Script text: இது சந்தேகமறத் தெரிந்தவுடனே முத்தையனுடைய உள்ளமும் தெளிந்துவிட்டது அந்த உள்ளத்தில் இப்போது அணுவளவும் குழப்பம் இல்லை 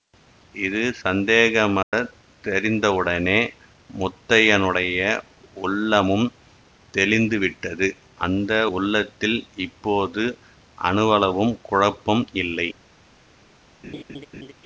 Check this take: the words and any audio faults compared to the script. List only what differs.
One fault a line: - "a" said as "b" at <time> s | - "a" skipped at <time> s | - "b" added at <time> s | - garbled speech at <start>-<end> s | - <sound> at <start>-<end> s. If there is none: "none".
- dropout at 1.8-1.9 s
- laugh at 13.8-14.5 s